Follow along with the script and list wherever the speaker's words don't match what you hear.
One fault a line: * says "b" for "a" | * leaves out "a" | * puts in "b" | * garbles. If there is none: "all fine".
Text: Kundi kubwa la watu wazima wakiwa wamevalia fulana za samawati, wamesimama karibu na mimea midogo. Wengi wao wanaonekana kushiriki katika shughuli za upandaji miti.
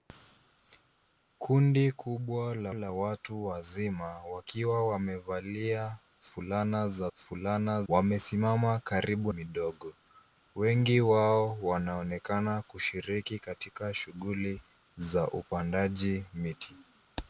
* puts in "la"
* says "fulana" for "samawati"
* leaves out "na mimea"